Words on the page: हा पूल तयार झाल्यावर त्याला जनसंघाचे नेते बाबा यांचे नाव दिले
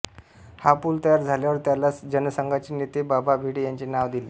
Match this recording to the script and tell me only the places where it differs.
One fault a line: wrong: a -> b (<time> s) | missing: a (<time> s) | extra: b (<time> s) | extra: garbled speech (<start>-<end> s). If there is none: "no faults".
extra: भिडे (3.4 s)